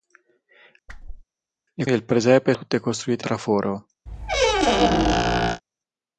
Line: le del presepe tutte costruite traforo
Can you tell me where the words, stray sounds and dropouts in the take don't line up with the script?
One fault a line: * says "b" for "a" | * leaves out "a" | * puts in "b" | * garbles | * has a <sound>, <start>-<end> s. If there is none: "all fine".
* has a whoosh, 0.9-1.2 s
* has a squeak, 4.1-5.6 s